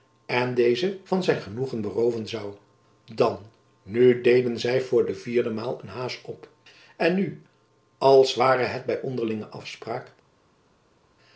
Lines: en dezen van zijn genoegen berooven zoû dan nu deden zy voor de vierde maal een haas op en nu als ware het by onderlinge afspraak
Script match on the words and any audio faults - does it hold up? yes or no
yes